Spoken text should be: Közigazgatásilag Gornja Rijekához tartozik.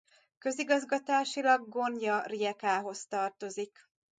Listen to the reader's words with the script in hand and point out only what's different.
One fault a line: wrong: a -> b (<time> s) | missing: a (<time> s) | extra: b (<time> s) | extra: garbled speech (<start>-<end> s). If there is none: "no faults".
no faults